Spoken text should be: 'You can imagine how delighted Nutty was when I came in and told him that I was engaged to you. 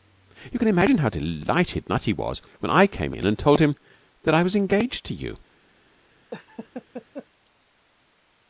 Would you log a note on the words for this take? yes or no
no